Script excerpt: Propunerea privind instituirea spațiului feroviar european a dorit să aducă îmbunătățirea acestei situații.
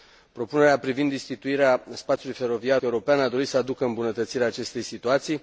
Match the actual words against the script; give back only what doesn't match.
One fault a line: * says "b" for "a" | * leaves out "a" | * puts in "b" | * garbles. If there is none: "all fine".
all fine